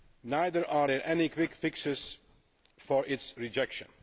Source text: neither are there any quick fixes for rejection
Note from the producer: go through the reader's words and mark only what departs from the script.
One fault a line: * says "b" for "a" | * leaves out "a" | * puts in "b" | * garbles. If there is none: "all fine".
* puts in "its"